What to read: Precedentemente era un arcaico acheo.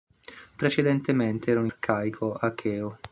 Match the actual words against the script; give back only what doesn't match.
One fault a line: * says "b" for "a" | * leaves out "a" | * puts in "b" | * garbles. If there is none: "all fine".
all fine